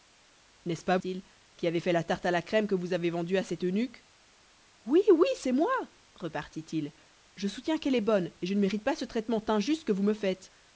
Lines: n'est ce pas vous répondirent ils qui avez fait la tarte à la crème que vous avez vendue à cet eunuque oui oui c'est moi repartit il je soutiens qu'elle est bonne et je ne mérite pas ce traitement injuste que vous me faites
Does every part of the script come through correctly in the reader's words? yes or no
no